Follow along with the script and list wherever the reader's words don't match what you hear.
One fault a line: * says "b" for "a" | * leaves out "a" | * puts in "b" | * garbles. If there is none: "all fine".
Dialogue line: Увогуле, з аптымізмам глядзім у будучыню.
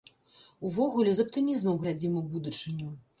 all fine